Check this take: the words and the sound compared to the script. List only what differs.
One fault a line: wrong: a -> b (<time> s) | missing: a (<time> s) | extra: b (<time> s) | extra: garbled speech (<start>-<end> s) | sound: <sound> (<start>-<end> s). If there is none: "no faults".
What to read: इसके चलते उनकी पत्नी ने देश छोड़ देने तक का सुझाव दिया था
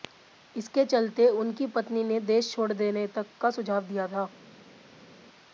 no faults